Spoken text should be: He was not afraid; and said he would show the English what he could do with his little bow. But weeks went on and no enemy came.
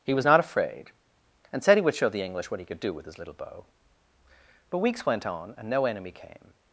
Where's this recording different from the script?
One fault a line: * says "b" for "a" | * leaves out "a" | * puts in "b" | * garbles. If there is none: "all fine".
all fine